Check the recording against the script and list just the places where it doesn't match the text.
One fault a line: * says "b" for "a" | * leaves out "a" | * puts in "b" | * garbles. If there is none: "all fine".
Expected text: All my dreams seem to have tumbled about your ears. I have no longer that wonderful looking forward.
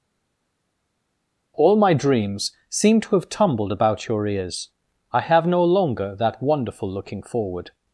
all fine